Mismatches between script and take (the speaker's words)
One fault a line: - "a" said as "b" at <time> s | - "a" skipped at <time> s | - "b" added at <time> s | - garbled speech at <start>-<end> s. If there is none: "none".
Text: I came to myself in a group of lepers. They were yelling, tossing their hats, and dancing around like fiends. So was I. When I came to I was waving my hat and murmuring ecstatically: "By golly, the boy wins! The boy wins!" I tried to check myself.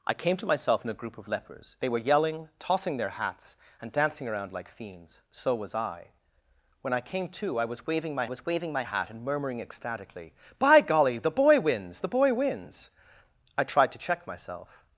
- "was waving my" added at 8.2 s